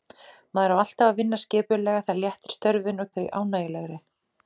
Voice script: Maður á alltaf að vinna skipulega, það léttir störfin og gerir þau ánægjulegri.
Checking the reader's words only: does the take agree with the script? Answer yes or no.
no